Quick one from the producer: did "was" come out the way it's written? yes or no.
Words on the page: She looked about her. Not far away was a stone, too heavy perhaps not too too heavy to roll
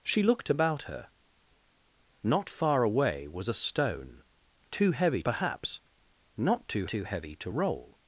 yes